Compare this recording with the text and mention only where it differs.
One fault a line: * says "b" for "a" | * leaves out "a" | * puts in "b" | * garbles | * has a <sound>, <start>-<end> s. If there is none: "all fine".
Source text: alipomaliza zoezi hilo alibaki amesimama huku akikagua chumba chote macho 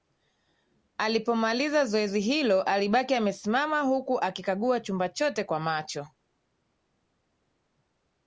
* puts in "kwa"